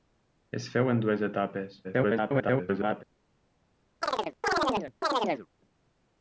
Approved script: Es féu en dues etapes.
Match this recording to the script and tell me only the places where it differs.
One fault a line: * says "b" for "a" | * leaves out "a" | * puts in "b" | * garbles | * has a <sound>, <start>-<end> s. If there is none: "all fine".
* garbles
* has a chirp, 4.0-5.5 s